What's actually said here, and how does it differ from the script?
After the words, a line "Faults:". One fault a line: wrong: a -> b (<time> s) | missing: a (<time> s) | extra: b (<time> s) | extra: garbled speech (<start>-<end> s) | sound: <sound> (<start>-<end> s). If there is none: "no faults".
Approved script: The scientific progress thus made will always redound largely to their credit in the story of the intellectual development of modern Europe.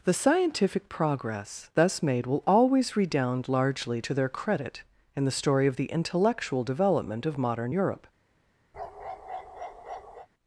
The scientific progress thus made will always redound largely to their credit in the story of the intellectual development of modern Europe.
Faults:
sound: bark (8.7-10.3 s)